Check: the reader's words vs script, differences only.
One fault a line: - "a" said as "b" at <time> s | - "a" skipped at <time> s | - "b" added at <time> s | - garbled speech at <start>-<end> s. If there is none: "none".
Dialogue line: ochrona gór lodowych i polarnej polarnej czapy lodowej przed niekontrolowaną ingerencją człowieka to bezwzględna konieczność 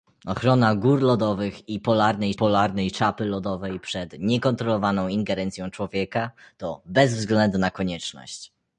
none